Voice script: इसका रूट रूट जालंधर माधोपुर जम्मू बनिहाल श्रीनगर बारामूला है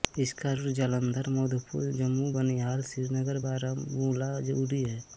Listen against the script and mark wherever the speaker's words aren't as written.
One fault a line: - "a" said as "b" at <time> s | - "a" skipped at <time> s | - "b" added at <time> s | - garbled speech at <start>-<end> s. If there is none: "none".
- "रूट" skipped at 0.7 s
- "उरी" added at 4.6 s